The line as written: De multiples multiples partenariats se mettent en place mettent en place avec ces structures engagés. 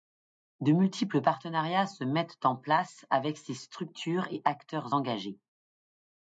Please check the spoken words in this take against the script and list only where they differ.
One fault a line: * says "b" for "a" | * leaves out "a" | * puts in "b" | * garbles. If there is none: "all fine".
* leaves out "multiples"
* leaves out "mettent en place"
* puts in "et acteurs"